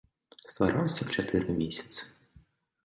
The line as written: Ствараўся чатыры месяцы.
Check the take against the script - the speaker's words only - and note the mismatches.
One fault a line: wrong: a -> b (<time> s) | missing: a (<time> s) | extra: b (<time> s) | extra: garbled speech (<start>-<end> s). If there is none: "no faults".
no faults